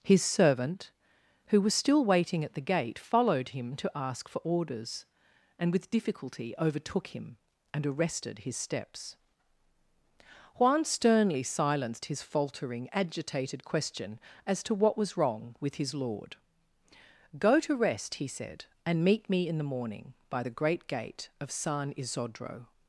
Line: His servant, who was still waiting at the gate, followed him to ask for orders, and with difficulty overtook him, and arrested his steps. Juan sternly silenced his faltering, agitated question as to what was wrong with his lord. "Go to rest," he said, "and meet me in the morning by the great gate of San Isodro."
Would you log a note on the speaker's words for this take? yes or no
no